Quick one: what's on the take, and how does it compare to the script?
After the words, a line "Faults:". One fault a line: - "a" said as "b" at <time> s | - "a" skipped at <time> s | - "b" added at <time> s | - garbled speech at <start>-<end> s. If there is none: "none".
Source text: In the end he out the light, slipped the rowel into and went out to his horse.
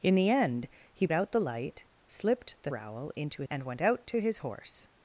In the end he out the light, slipped the rowel into and went out to his horse.
Faults:
none